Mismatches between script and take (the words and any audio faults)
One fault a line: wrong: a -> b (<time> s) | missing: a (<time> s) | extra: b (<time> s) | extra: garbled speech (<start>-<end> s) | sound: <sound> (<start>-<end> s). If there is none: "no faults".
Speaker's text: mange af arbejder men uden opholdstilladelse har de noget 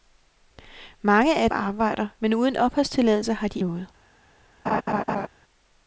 sound: laugh (4.7-5.3 s)